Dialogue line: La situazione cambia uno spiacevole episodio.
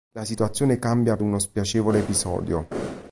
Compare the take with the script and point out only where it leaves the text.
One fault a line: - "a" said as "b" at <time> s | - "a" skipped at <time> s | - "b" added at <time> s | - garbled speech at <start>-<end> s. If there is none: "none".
none